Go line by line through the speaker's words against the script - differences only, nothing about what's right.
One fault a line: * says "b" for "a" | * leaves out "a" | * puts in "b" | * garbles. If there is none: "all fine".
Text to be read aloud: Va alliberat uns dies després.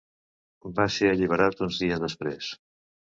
* puts in "ser"